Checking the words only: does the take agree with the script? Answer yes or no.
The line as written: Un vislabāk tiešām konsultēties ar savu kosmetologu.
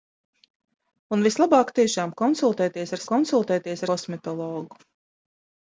no